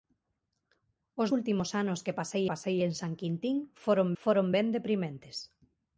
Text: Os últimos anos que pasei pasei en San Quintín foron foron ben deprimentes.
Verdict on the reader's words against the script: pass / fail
pass